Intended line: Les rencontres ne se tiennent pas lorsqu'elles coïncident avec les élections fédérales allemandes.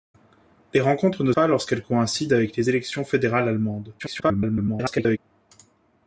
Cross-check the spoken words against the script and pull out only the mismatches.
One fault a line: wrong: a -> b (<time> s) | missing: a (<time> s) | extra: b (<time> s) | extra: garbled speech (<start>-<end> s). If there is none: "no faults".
missing: se tiennent (1.3 s)
extra: garbled speech (4.0-5.2 s)